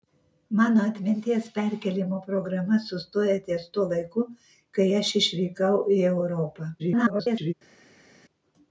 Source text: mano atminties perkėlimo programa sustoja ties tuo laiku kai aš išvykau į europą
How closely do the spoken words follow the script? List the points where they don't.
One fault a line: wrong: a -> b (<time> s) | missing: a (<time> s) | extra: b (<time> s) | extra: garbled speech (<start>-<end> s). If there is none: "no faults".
extra: garbled speech (6.8-7.5 s)